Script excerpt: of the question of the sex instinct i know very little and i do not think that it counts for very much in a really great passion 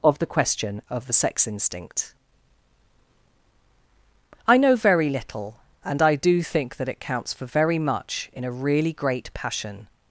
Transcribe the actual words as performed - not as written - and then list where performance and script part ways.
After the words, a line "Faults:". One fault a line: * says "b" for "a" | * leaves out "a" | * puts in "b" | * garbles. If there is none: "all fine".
of the question of the sex instinct i know very little and i do think that it counts for very much in a really great passion
Faults:
* leaves out "not"